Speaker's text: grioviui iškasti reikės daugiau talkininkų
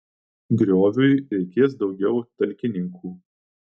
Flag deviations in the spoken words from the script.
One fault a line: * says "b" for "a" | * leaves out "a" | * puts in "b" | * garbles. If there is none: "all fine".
* leaves out "iškasti"